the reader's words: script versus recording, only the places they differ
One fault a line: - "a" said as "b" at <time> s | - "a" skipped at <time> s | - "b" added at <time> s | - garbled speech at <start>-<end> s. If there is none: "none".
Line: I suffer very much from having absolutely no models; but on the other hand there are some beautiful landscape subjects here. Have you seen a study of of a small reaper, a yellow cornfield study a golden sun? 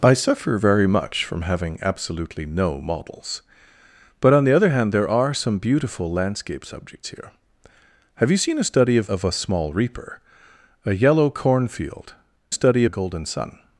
none